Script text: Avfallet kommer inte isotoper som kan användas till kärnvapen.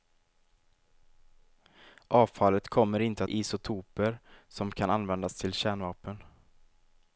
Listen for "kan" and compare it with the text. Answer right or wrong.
right